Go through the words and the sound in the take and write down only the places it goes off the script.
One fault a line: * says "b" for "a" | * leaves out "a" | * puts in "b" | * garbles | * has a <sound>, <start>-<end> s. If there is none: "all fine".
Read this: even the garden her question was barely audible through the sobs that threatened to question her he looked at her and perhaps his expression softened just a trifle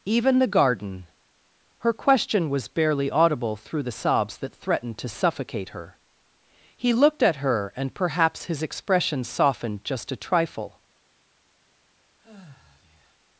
* says "suffocate" for "question"
* has a sigh, 12.2-13.2 s